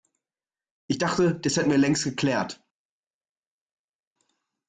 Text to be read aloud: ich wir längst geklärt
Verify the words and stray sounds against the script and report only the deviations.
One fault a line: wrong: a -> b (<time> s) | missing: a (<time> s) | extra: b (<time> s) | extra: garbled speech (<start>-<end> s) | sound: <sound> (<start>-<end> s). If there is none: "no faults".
extra: dachte das hätten (0.9 s)